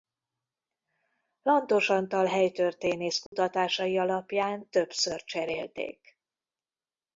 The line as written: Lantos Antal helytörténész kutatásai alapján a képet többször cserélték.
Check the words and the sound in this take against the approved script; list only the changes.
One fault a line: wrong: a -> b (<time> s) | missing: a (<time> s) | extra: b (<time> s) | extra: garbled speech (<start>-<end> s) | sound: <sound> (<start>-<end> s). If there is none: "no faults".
sound: dropout (3.3-3.3 s)
missing: a képet (4.7 s)